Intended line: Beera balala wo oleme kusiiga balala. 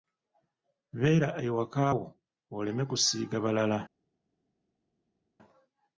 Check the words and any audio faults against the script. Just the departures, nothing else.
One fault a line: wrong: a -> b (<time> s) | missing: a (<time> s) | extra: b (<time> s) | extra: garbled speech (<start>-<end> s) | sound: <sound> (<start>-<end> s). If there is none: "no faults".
wrong: balala -> ewaka (1.5 s)